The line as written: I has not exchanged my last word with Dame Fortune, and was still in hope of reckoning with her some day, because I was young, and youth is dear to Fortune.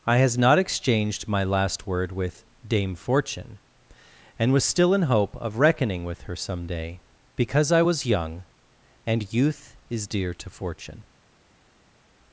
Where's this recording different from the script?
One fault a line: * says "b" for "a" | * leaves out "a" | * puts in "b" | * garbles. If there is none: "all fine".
all fine